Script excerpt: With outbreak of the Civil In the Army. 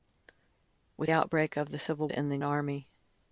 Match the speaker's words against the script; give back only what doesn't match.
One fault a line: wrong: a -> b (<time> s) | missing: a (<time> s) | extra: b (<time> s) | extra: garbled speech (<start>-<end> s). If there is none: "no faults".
no faults